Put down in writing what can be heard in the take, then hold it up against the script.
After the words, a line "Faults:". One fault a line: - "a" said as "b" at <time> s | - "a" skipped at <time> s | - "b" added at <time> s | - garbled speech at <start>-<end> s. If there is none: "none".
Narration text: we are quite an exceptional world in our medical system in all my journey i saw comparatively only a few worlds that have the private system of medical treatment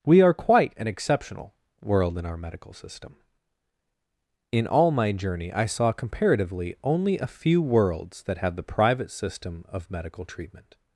we are quite an exceptional world in our medical system in all my journey i saw comparatively only a few worlds that have the private system of medical treatment
Faults:
none